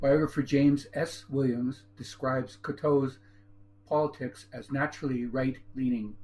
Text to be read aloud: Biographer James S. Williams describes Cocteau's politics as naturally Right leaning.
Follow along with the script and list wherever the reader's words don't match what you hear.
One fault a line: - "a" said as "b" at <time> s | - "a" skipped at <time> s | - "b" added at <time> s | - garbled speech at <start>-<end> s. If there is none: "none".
none